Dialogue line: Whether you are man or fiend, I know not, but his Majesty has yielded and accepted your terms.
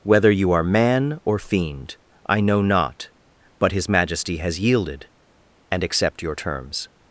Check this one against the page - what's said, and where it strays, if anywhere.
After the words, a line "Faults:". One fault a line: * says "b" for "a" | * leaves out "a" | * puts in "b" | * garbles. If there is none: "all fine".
Whether you are man or fiend, I know not, but his Majesty has yielded and accept your terms.
Faults:
* says "accept" for "accepted"